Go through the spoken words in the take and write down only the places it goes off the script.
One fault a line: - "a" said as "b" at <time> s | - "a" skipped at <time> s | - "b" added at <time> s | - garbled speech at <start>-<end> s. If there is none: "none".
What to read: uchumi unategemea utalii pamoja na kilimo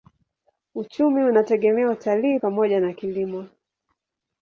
none